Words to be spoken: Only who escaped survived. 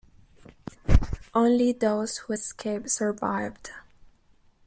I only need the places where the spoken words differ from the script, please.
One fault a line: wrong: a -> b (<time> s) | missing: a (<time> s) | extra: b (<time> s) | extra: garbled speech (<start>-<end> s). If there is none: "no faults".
extra: those (1.7 s)